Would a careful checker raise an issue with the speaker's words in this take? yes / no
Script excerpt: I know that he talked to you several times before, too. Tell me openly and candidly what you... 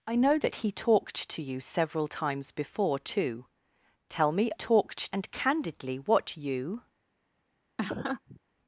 yes